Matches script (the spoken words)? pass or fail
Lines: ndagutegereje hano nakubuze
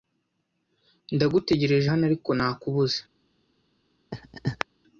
fail